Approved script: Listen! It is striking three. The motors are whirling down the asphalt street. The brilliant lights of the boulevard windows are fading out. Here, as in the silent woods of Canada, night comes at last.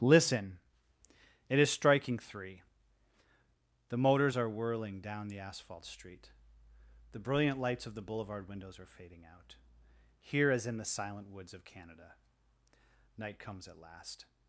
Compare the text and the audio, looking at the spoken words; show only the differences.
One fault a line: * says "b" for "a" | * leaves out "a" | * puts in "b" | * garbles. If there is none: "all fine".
all fine